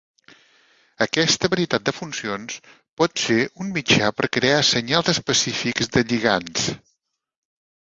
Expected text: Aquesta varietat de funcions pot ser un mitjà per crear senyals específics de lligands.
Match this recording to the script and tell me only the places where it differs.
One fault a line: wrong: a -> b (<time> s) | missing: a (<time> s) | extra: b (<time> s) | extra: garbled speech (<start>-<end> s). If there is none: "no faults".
no faults